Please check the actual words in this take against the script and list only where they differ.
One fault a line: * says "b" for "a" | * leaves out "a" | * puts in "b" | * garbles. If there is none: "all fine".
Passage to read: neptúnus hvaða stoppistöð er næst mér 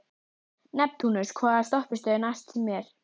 all fine